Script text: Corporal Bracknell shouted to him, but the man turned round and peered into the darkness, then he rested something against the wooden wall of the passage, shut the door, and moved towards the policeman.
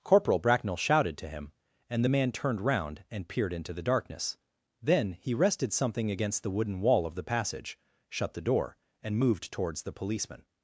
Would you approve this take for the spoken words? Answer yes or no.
no